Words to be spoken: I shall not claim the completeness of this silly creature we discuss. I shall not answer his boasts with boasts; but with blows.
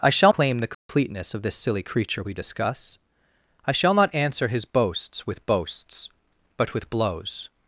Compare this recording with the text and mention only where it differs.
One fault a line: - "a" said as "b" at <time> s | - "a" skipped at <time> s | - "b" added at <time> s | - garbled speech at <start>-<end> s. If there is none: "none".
- "not" skipped at 0.3 s